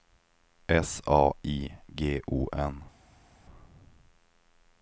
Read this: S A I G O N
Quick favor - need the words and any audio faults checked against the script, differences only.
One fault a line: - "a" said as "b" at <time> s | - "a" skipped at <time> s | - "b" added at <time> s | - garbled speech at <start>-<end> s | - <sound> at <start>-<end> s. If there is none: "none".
none